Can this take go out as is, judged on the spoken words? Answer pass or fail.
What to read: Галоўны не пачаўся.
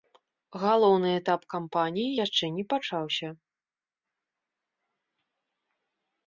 fail